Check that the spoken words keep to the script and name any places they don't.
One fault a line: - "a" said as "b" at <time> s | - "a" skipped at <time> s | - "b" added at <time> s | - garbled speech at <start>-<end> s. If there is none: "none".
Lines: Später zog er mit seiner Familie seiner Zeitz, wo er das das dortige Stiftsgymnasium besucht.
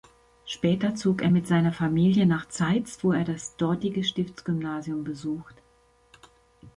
- "seiner" said as "nach" at 2.3 s
- "das" skipped at 3.6 s